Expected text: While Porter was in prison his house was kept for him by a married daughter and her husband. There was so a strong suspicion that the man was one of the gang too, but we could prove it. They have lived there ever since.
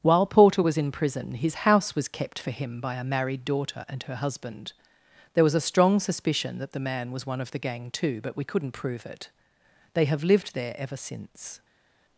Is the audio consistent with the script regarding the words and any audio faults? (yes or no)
no